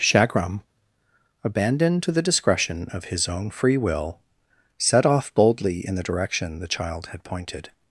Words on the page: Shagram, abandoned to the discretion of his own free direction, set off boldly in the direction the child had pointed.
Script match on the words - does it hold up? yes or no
no